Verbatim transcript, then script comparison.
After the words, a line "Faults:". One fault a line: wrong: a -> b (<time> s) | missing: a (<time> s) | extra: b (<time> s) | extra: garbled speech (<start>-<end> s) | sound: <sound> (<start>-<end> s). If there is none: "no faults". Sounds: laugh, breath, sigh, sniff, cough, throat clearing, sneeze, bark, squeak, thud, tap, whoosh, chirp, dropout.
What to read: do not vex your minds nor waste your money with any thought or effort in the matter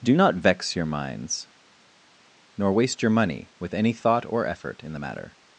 do not vex your minds nor waste your money with any thought or effort in the matter
Faults:
no faults